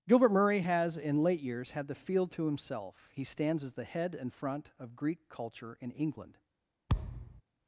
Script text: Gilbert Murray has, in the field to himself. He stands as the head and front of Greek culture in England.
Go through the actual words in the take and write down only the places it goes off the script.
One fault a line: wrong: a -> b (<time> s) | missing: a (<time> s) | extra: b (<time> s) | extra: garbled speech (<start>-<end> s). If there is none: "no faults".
extra: late years had (1.2 s)